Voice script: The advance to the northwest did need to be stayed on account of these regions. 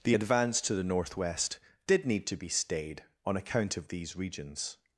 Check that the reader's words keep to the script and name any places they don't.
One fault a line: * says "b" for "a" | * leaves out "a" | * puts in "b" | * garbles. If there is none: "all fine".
all fine